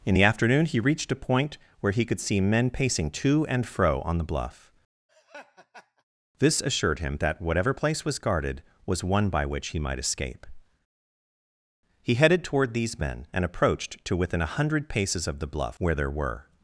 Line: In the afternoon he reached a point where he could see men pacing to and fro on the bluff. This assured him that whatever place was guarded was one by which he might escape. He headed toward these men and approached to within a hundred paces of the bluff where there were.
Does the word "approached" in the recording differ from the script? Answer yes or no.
no